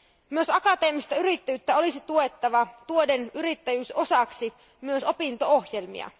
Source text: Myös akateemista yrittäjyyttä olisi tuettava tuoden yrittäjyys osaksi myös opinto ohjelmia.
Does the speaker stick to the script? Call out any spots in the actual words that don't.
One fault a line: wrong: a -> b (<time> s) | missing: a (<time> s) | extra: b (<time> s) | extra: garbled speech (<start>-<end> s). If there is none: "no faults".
no faults